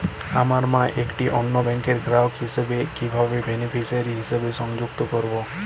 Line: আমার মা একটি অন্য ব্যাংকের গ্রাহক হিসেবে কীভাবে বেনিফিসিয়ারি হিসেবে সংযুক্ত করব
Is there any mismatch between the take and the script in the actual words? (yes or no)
no